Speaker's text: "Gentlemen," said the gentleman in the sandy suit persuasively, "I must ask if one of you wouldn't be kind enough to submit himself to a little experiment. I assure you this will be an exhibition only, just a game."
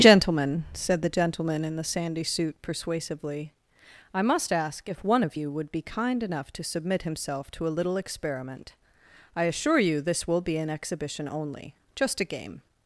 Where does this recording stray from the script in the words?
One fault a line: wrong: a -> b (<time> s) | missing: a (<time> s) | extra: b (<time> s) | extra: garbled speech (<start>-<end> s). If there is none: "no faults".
wrong: wouldn't -> would (5.5 s)